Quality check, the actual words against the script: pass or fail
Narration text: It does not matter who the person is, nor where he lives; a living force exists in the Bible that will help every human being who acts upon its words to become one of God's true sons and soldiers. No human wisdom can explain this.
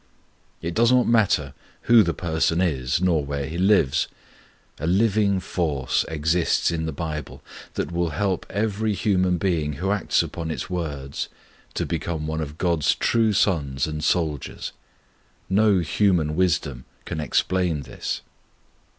pass